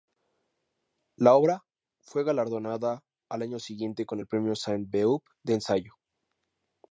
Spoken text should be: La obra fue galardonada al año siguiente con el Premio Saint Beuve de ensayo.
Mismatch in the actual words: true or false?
false